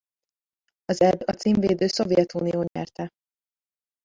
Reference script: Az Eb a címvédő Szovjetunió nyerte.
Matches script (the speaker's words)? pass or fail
pass